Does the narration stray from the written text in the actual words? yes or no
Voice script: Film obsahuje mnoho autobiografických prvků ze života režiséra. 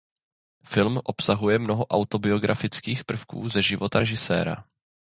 no